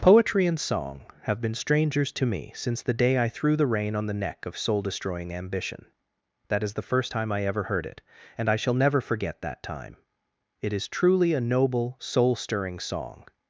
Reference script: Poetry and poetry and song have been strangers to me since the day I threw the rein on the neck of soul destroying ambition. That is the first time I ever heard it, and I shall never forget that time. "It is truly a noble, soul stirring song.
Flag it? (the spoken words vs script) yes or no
yes